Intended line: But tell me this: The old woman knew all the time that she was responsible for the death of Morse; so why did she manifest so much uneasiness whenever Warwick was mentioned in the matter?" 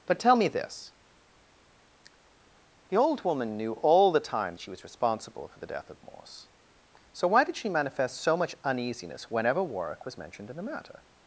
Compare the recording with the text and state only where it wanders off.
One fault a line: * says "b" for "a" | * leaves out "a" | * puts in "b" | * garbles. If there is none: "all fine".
* leaves out "that"